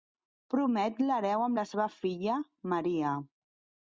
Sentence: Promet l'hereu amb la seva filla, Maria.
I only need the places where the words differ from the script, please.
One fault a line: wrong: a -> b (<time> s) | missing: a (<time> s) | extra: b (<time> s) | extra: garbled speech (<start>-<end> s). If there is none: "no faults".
no faults